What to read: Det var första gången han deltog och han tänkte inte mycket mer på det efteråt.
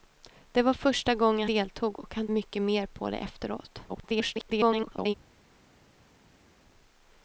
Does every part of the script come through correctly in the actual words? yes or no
no